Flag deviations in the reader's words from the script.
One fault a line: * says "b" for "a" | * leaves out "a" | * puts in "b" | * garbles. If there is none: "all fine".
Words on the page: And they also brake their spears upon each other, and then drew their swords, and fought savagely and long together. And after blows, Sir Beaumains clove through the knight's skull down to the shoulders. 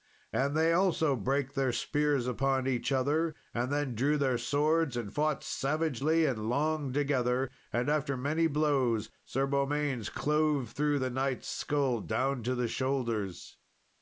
* puts in "many"